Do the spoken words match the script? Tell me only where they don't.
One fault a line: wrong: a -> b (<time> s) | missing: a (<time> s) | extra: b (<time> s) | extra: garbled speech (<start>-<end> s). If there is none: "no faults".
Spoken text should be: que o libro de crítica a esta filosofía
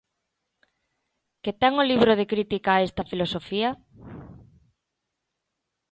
extra: ten (1.6 s)